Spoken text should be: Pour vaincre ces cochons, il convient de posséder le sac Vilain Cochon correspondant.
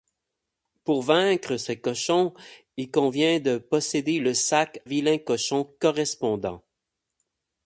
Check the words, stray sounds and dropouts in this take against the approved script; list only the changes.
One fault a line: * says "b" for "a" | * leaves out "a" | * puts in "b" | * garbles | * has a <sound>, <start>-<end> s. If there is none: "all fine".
all fine